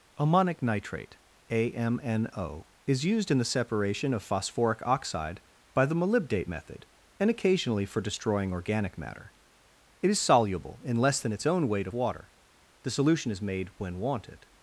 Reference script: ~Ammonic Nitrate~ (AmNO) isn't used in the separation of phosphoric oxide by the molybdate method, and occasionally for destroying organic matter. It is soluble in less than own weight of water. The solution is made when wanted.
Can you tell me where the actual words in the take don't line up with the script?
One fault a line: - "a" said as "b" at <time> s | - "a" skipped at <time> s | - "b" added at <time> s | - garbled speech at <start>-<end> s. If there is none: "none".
- "isn't" said as "is" at 2.9 s
- "its" added at 11.3 s